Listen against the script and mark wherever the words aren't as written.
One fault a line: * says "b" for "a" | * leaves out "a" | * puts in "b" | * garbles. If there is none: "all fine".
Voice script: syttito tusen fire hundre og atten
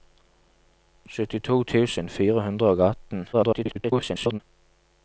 * garbles